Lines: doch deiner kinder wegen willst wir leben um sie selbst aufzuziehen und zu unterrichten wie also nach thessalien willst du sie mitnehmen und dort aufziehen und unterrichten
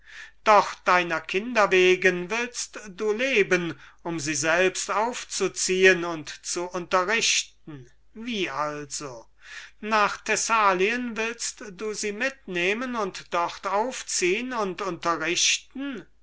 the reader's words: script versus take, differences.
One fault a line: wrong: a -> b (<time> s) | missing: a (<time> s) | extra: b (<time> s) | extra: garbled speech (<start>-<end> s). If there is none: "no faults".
wrong: wir -> du (2.9 s)